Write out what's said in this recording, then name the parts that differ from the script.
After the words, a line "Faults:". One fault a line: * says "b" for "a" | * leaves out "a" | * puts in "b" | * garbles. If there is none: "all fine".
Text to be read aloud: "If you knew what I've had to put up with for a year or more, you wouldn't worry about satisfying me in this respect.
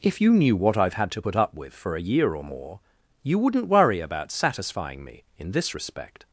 "If you knew what I've had to put up with for a year or more, you wouldn't worry about satisfying me in this respect.
Faults:
all fine